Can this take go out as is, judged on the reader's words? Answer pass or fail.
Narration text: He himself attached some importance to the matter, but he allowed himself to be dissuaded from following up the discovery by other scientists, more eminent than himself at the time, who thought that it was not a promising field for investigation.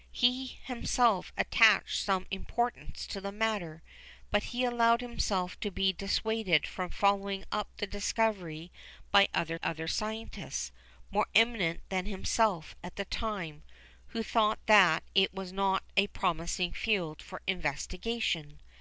fail